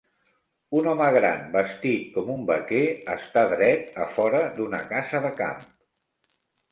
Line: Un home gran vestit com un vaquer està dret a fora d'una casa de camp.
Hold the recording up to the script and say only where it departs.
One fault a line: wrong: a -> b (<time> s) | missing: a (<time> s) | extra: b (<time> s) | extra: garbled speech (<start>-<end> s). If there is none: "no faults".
no faults